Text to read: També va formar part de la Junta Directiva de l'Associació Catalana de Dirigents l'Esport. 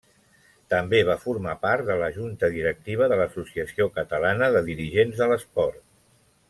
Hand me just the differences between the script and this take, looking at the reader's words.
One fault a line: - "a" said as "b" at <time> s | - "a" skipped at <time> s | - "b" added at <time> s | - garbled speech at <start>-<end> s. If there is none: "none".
- "de" added at 5.2 s